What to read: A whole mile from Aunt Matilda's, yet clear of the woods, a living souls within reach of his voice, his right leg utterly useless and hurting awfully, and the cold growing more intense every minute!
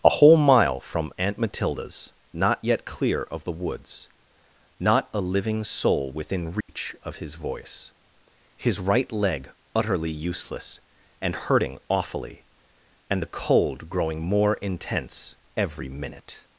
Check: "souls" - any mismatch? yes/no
yes